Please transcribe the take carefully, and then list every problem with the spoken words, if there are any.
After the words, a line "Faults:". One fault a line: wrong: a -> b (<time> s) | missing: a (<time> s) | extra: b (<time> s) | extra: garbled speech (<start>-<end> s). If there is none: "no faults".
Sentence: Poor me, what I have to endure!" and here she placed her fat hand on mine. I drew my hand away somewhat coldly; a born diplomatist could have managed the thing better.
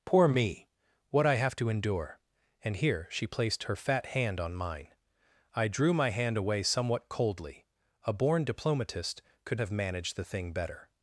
Poor me, what I have to endure!" and here she placed her fat hand on mine. I drew my hand away somewhat coldly; a born diplomatist could have managed the thing better.
Faults:
no faults